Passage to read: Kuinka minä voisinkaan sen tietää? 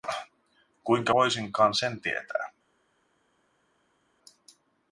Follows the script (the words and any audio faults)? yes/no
no